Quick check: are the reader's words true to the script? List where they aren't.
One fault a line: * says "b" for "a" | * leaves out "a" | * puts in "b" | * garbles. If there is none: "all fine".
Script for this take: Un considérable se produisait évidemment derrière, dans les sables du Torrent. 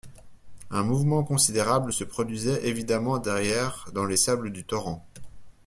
* puts in "mouvement"